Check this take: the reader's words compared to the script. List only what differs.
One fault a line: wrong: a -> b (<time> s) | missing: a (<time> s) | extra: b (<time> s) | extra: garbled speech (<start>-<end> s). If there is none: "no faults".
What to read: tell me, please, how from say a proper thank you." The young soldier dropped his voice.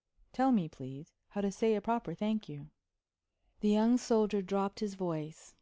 wrong: from -> to (1.4 s)